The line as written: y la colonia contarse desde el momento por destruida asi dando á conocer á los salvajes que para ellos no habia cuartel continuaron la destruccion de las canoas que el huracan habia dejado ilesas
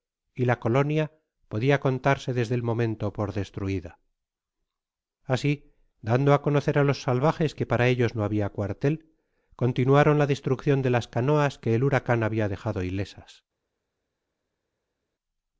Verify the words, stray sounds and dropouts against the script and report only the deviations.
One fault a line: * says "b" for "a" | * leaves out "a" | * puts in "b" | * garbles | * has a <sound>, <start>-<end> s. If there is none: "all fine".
* puts in "podia"